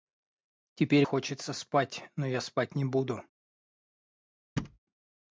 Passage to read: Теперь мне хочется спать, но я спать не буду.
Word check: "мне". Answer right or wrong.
wrong